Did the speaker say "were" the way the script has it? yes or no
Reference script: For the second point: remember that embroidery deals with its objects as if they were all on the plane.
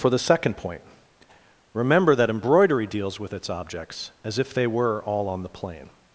yes